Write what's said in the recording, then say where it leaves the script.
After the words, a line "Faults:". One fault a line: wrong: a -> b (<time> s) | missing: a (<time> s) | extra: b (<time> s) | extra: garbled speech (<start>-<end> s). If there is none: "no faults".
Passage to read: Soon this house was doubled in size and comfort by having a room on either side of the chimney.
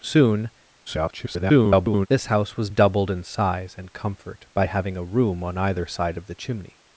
Soon [garbled] this house was doubled in size and comfort by having a room on either side of the chimney.
Faults:
extra: garbled speech (0.9-2.1 s)